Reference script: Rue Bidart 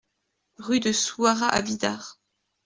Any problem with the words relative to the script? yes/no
yes